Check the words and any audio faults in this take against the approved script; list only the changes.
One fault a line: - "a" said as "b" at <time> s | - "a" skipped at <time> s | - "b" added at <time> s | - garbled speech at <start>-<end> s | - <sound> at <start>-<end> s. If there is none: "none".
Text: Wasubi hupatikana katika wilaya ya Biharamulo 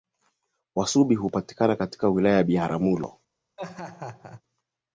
- laugh at 3.6-4.4 s